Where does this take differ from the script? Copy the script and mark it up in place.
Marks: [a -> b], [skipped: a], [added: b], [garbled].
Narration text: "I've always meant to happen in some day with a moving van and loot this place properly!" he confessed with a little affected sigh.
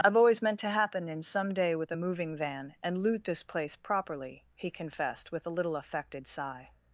"I've always meant to happen in some day with a moving van and loot this place properly!" he confessed with a little affected sigh.